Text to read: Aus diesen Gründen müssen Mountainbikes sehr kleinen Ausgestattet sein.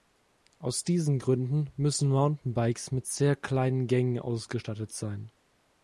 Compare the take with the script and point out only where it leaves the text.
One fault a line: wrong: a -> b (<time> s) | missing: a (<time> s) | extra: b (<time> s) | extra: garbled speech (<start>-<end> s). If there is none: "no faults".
extra: mit (2.9 s)
extra: Gängen (3.9 s)